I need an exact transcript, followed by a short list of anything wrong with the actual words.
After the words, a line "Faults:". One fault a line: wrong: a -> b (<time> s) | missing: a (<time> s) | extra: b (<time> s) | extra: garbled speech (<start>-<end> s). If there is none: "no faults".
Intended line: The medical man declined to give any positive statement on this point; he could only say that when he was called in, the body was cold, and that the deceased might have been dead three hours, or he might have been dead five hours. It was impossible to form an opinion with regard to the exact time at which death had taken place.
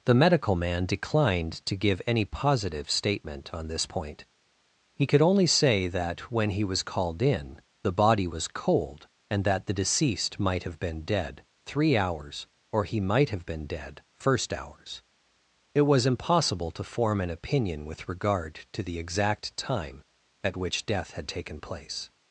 The medical man declined to give any positive statement on this point; he could only say that when he was called in, the body was cold, and that the deceased might have been dead three hours, or he might have been dead first hours. It was impossible to form an opinion with regard to the exact time at which death had taken place.
Faults:
wrong: five -> first (14.1 s)